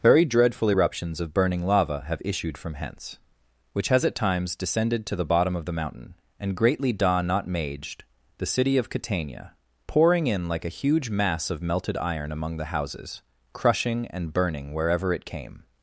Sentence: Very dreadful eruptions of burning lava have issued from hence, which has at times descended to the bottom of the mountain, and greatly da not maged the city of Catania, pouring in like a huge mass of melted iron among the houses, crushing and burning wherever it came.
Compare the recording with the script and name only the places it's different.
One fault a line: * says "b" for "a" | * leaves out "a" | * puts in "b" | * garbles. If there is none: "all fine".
all fine